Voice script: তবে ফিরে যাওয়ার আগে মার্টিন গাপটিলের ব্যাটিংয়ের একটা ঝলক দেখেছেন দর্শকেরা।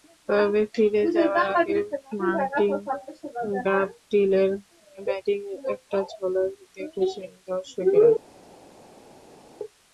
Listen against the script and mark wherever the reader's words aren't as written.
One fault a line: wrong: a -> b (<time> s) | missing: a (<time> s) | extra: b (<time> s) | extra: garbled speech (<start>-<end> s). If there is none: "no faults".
no faults